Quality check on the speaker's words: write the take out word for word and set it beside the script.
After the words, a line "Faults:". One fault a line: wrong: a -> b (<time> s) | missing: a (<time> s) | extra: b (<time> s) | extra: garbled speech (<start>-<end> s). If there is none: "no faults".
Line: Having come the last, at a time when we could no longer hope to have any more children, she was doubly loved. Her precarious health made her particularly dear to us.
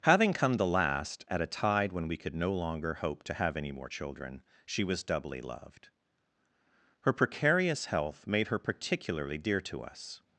Having come the last, at a tide when we could no longer hope to have any more children, she was doubly loved. Her precarious health made her particularly dear to us.
Faults:
wrong: time -> tide (1.5 s)